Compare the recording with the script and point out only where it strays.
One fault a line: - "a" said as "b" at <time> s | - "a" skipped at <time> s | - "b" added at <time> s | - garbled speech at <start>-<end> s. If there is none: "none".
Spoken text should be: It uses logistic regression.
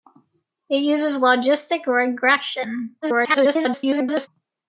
- garbled speech at 3.0-4.3 s